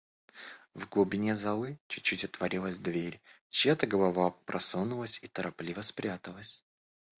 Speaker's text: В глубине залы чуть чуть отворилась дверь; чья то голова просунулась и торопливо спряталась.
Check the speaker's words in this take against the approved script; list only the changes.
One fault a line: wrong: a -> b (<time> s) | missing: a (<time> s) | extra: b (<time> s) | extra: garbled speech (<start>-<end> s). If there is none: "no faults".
no faults